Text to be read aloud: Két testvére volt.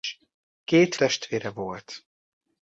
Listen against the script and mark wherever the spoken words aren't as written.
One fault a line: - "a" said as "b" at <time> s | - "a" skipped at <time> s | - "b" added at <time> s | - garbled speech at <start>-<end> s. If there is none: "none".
none